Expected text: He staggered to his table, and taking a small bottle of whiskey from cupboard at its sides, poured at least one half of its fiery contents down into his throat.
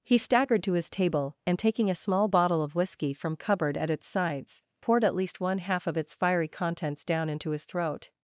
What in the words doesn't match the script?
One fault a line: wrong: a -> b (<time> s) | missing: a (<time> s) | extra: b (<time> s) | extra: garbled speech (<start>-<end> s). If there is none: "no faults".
no faults